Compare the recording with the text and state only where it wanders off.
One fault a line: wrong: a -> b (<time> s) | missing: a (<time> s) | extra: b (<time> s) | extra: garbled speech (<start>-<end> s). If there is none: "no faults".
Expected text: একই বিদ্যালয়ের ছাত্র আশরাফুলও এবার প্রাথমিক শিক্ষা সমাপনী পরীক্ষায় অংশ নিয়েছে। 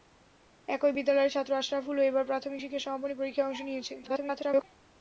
extra: garbled speech (4.0-4.6 s)